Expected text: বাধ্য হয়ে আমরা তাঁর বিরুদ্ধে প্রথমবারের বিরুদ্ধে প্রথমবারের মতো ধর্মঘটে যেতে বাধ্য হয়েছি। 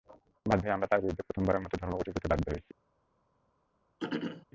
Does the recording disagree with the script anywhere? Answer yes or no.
yes